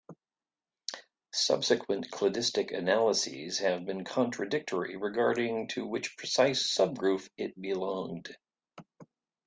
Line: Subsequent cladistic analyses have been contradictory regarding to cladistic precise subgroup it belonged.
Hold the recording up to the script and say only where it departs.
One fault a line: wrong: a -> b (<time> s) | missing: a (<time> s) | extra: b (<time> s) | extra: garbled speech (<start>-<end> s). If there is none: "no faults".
wrong: cladistic -> which (5.8 s)